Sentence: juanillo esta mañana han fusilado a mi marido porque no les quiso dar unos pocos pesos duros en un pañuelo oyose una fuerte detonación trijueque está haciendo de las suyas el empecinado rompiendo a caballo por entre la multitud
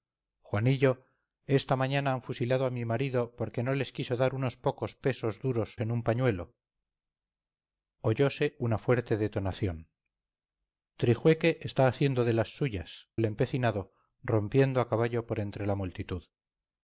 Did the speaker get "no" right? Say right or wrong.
right